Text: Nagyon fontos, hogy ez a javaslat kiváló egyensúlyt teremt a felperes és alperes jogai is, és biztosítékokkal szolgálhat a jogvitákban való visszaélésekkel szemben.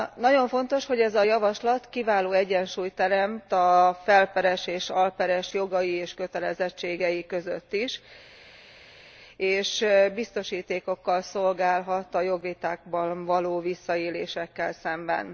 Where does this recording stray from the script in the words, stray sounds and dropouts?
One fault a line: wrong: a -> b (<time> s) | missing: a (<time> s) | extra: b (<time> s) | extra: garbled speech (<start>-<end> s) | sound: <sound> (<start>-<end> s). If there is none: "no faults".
extra: és kötelezettségei között (5.9 s)